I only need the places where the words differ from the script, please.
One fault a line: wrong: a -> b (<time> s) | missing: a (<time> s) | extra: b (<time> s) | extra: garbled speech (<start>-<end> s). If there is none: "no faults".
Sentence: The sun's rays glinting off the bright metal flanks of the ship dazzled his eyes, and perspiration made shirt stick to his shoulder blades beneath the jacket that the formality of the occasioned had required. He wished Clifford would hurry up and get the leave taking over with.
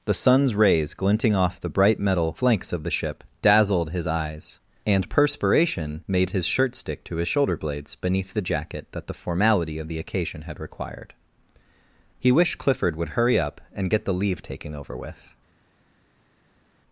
extra: his (6.3 s)
wrong: occasioned -> occasion (10.0 s)